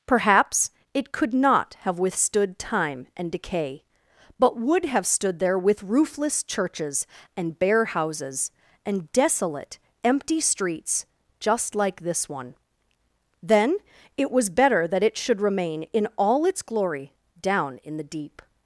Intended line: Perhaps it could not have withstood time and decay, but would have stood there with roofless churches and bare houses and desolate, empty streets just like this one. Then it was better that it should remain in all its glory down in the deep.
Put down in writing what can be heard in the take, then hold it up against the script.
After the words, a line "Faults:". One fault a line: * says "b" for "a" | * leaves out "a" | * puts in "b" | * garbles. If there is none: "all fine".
Perhaps it could not have withstood time and decay, but would have stood there with roofless churches and bare houses and desolate, empty streets just like this one. Then it was better that it should remain in all its glory down in the deep.
Faults:
all fine